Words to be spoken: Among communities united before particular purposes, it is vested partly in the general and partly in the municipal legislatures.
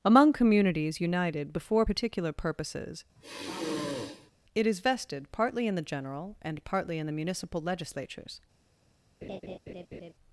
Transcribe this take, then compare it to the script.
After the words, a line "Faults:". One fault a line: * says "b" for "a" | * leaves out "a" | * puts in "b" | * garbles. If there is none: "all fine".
Among communities united before particular purposes, it is vested partly in the general and partly in the municipal legislatures.
Faults:
all fine